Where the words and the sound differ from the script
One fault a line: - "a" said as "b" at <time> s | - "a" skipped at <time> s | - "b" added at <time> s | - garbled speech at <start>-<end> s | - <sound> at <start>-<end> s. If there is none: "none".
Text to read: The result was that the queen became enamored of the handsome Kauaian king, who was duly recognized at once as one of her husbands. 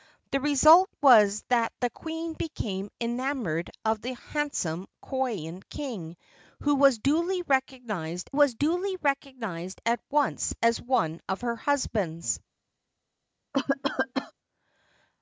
- "was duly recognized" added at 8.3 s
- cough at 13.5-14.3 s